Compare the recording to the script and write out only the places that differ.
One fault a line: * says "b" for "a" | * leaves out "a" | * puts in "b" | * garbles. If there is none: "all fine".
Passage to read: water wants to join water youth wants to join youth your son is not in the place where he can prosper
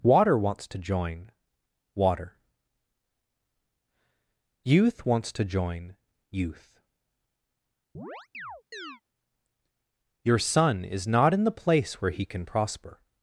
all fine